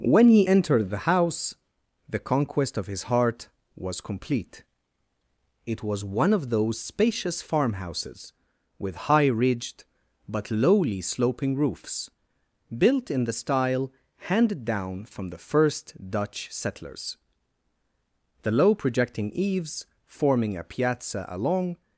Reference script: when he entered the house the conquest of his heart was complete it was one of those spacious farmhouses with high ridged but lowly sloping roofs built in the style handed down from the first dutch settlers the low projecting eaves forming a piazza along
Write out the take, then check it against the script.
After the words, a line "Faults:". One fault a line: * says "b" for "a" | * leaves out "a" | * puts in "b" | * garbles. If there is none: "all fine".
when he entered the house the conquest of his heart was complete it was one of those spacious farmhouses with high ridged but lowly sloping roofs built in the style handed down from the first dutch settlers the low projecting eaves forming a piazza along
Faults:
all fine